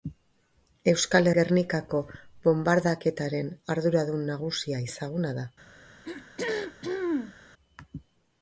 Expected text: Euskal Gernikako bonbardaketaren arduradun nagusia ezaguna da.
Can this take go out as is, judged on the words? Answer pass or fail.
pass